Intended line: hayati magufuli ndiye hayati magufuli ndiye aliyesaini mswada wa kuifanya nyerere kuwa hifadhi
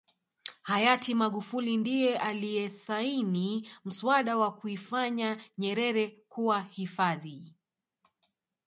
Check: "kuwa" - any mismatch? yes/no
no